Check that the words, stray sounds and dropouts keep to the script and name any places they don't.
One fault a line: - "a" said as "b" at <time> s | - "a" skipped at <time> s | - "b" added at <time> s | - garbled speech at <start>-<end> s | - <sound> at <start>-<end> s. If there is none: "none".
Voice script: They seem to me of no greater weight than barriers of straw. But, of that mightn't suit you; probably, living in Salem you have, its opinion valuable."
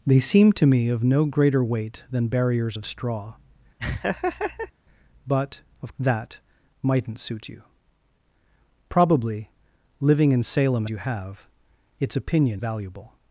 - laugh at 3.8-4.7 s